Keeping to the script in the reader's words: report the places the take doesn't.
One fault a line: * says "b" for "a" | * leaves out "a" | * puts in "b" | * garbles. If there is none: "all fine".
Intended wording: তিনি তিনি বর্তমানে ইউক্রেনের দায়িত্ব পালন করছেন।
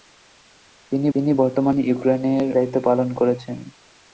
all fine